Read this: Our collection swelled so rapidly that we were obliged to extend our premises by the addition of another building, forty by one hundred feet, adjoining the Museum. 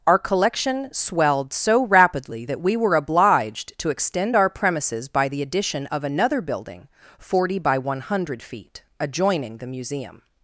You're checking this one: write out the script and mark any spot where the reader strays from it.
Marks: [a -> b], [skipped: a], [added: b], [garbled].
Our collection swelled so rapidly that we were obliged to extend our premises by the addition of another building, forty by one hundred feet, adjoining the Museum.